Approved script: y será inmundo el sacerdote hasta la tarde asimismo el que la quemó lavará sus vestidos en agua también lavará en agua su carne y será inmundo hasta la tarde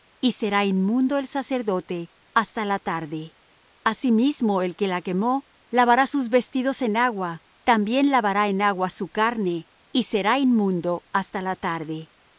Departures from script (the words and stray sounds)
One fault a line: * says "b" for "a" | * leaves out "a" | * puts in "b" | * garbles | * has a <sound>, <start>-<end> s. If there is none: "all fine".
all fine